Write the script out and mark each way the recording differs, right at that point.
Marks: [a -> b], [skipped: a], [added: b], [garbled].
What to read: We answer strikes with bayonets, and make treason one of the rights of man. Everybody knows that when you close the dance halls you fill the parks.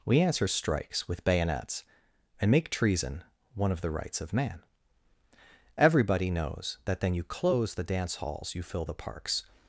We answer strikes with bayonets, and make treason one of the rights of man. Everybody knows that [when -> then] you close the dance halls you fill the parks.